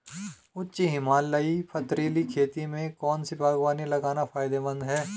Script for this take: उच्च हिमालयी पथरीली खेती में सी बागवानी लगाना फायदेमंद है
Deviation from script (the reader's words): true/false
true